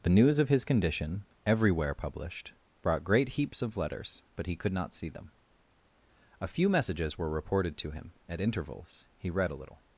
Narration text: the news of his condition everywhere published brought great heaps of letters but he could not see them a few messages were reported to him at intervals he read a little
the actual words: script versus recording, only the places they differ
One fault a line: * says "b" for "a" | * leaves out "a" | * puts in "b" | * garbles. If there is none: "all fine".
all fine